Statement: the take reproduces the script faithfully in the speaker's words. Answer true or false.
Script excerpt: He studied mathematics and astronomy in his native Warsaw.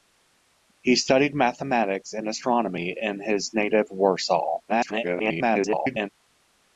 false